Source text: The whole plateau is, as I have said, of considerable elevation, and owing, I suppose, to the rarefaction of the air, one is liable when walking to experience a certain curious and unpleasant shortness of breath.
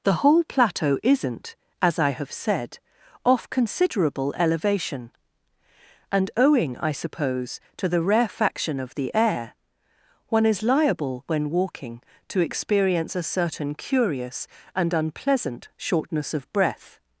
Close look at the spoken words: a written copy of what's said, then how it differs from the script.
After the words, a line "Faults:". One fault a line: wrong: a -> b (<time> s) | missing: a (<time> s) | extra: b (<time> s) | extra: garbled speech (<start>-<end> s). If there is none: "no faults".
The whole plateau isn't, as I have said, off considerable elevation, and owing, I suppose, to the rarefaction of the air, one is liable when walking to experience a certain curious and unpleasant shortness of breath.
Faults:
wrong: is -> isn't (1.0 s)
wrong: of -> off (3.2 s)